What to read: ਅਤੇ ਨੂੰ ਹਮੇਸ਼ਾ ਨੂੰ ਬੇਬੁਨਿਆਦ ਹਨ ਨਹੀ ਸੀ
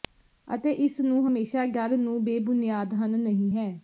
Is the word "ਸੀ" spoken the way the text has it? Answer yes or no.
no